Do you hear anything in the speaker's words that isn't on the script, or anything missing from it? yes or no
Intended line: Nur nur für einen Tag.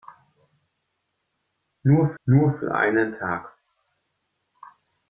no